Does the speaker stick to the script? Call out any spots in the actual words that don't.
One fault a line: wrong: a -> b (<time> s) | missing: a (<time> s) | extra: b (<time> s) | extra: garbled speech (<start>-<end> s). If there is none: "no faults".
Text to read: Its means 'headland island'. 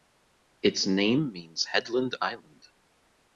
extra: name (0.9 s)